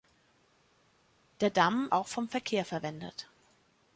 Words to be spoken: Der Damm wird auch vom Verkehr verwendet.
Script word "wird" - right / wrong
wrong